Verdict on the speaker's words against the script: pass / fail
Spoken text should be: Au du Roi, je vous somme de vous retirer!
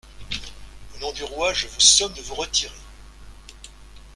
fail